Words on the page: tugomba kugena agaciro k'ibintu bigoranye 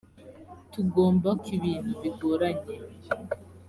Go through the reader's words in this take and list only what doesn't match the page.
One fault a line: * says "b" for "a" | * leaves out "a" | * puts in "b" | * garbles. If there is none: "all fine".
* leaves out "kugena agaciro"